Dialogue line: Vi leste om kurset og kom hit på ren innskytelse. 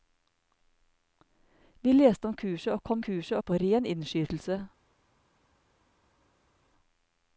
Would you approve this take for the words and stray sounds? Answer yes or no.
no